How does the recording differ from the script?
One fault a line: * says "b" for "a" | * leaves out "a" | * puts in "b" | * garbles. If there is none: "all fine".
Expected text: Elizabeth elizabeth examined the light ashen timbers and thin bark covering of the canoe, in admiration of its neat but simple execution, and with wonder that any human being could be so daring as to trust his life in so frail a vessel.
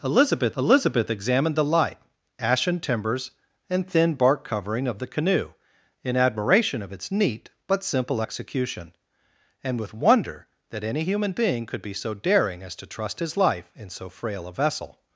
all fine